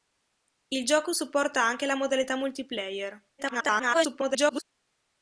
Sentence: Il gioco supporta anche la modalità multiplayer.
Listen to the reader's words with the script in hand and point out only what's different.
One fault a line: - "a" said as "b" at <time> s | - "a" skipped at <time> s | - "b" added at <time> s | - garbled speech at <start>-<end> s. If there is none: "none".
- garbled speech at 3.4-4.6 s